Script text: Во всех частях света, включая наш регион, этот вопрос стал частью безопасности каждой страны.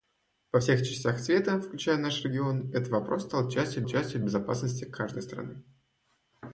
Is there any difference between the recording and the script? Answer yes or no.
yes